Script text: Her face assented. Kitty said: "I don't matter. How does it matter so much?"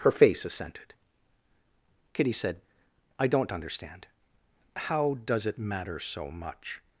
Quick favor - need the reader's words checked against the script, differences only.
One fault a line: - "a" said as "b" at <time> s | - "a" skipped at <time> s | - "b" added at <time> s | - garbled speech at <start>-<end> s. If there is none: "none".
- "matter" said as "understand" at 3.5 s